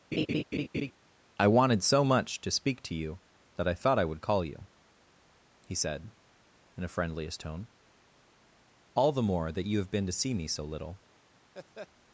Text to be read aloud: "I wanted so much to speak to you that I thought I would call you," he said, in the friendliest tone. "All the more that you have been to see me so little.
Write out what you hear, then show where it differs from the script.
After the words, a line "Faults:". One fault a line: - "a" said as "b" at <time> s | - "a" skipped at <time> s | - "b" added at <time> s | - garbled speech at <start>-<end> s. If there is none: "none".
"I wanted so much to speak to you that I thought I would call you," he said, in a friendliest tone. "All the more that you have been to see me so little.
Faults:
- "the" said as "a" at 6.8 s